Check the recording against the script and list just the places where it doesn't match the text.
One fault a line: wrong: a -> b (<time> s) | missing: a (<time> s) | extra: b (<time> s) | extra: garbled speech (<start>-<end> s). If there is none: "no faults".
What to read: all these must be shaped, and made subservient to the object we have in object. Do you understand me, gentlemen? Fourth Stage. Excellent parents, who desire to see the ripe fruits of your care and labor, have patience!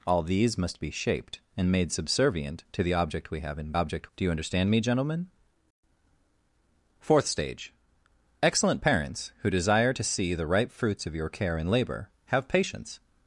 no faults